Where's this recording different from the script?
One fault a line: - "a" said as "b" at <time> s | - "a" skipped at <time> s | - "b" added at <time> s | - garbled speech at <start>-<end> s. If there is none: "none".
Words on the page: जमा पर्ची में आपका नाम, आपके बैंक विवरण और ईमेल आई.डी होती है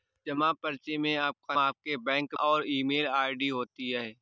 - "नाम" skipped at 1.6 s
- "विवरण" skipped at 2.3 s